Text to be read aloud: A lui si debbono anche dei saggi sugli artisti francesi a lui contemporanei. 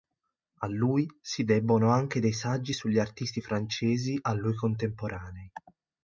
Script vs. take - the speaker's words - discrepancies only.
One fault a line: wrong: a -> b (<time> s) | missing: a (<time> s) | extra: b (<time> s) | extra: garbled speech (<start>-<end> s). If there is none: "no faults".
no faults